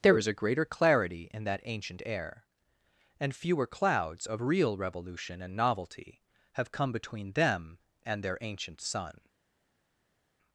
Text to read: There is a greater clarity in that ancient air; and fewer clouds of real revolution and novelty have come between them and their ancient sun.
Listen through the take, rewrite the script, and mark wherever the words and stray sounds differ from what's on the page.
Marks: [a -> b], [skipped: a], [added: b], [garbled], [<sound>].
There is a greater clarity in that ancient air; and fewer clouds of real revolution and novelty have come between them and their ancient sun.